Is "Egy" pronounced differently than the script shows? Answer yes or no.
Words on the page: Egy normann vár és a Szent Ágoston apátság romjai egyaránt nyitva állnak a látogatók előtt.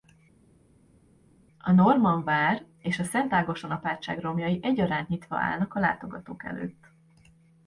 yes